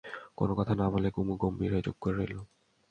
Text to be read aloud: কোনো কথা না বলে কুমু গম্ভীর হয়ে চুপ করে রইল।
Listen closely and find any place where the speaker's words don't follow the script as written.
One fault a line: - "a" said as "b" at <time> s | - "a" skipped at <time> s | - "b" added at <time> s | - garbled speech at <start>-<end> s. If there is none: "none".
none